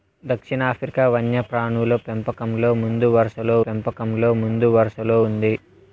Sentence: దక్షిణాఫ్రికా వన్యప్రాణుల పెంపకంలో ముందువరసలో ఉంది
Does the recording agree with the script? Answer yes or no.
no